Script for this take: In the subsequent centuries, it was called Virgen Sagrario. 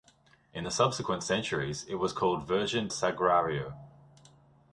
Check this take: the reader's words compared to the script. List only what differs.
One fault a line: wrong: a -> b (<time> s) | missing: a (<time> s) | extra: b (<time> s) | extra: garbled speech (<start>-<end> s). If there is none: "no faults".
no faults